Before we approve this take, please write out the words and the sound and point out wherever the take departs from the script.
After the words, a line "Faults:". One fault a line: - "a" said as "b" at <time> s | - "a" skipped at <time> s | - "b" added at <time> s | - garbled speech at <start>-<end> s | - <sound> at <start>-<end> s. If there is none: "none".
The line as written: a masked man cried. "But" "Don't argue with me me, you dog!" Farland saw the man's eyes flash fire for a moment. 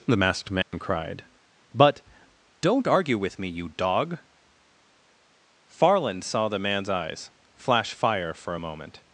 the masked man cried. "But" "Don't argue with me, you dog!" Farland saw the man's eyes flash fire for a moment.
Faults:
- "a" said as "the" at 0.1 s
- dropout at 0.6-0.7 s
- "me" skipped at 3.5 s